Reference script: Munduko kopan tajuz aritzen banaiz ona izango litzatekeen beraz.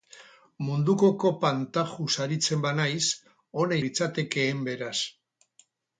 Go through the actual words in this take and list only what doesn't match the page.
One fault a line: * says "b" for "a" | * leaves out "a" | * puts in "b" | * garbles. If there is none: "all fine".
* leaves out "izango"